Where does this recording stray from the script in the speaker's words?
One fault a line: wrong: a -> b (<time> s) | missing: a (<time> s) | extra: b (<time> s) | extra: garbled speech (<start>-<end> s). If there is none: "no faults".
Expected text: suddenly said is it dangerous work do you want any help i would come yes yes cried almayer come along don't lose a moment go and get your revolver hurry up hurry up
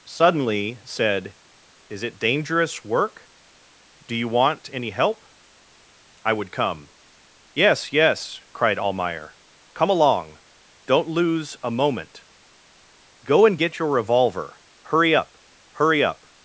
no faults